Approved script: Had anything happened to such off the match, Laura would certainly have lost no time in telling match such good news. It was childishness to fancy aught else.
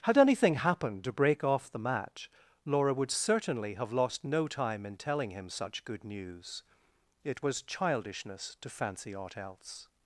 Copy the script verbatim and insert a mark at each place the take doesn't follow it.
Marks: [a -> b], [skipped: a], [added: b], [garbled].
Had anything happened to [such -> break] off the match, Laura would certainly have lost no time in telling [match -> him] such good news. It was childishness to fancy aught else.